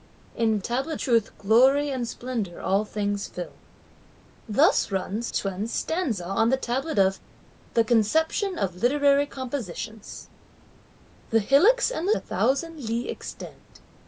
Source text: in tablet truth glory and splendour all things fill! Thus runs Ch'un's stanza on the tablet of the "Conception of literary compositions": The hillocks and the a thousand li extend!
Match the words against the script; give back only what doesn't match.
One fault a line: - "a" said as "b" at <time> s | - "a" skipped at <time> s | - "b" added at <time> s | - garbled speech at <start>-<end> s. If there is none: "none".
none